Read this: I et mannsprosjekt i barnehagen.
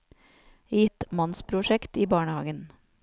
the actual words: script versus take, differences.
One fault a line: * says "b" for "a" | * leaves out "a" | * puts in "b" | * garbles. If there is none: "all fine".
all fine